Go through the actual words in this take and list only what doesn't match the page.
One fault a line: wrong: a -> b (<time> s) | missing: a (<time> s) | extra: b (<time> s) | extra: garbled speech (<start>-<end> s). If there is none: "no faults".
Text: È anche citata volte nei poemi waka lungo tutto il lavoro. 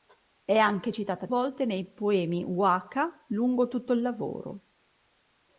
no faults